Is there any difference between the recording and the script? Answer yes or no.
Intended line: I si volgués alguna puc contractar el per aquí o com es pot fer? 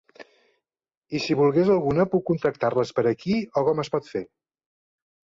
yes